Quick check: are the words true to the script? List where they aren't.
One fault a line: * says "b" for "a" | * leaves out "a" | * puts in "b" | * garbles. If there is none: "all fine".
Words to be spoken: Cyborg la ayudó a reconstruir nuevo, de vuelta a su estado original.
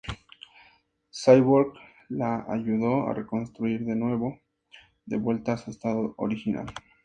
* puts in "de"